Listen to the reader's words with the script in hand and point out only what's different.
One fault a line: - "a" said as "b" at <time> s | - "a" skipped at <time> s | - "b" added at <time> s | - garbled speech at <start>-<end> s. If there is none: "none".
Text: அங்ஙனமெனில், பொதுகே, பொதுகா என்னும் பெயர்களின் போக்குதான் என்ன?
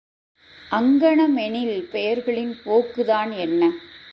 - "பொதுகே பொதுகா என்னும்" skipped at 1.8 s